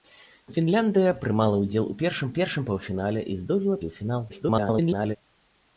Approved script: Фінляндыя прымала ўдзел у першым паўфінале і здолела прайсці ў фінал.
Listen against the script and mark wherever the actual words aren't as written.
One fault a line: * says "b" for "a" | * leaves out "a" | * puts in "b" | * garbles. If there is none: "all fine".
* puts in "першым"
* leaves out "прайсці"
* garbles